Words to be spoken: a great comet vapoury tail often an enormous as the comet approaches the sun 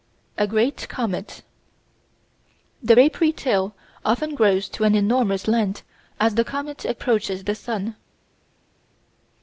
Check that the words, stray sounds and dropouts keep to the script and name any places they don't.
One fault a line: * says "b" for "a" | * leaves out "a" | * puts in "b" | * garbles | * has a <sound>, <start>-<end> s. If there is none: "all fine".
* puts in "the"
* puts in "grows to"
* puts in "length"